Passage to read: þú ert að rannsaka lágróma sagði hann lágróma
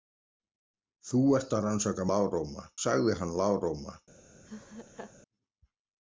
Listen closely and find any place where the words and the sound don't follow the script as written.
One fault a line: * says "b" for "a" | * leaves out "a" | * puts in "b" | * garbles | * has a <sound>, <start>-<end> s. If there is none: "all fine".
* has a laugh, 4.4-5.2 s